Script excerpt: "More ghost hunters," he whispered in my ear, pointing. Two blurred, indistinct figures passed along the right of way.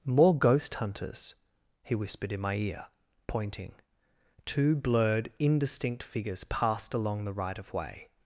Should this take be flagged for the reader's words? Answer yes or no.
no